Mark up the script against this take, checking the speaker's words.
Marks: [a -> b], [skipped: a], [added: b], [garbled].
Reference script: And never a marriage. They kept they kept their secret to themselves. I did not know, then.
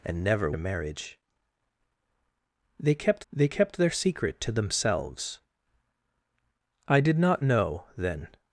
And never a marriage. They kept they kept their secret to themselves. I did not know, then.